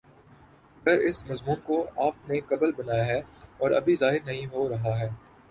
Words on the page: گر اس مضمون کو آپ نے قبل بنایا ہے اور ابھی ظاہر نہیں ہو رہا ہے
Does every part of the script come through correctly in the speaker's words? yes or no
yes